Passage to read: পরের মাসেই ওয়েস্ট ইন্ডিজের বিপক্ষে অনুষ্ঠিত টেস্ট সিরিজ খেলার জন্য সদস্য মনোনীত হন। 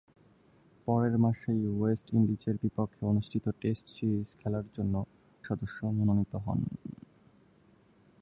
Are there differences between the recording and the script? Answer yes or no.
no